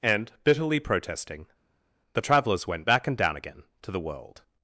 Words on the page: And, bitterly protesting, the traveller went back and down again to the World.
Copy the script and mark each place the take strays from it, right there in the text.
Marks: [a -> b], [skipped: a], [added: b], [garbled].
And, bitterly protesting, the [traveller -> travellers] went back and down again to the World.